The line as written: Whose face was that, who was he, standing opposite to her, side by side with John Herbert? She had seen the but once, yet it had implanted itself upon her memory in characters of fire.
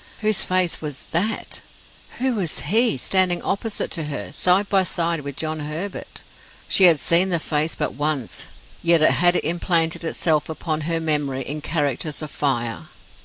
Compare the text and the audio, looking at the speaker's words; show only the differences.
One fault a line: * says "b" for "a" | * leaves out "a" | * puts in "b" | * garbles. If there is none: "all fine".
* puts in "face"